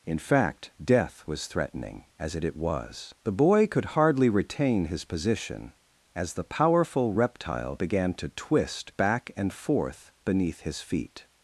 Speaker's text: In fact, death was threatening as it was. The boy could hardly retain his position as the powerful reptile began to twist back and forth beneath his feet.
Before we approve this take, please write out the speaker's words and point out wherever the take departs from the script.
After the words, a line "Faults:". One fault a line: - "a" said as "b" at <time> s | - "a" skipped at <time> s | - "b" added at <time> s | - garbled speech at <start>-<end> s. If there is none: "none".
In fact, death was threatening as it it was. The boy could hardly retain his position as the powerful reptile began to twist back and forth beneath his feet.
Faults:
- "it" added at 2.4 s